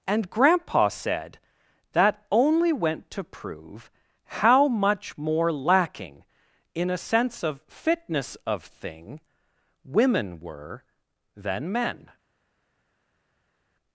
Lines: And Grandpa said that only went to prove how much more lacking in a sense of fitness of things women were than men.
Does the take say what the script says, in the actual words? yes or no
no